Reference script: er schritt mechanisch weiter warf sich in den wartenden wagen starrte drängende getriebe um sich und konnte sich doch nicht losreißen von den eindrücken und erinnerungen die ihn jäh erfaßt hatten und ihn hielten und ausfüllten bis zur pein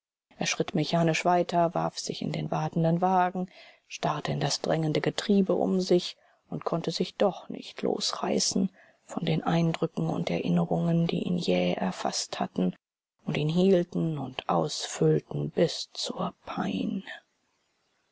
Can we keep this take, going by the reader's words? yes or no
no